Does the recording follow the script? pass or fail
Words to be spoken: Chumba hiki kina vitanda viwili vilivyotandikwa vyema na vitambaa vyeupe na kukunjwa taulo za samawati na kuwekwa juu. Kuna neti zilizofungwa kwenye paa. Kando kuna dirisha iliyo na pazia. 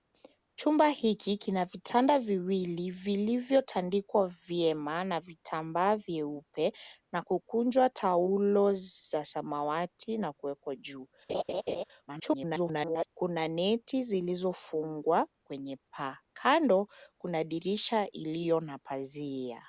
fail